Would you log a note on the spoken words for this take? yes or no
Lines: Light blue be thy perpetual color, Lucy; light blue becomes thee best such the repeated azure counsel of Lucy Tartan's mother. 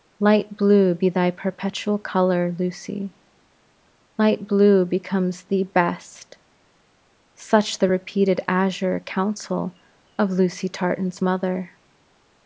no